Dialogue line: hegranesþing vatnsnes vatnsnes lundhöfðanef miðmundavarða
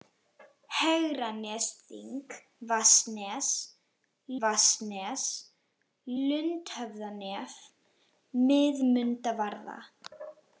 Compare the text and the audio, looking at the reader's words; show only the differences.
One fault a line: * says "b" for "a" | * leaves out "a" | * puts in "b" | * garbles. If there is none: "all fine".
all fine